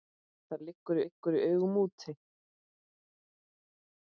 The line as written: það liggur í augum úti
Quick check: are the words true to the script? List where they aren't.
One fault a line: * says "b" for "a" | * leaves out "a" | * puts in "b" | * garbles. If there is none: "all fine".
* puts in "liggur"